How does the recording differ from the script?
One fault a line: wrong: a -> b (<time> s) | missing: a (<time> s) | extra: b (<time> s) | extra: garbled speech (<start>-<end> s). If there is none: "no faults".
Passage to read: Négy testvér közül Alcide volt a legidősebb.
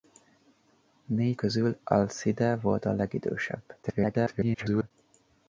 missing: testvér (1.4 s)
extra: garbled speech (3.8-4.9 s)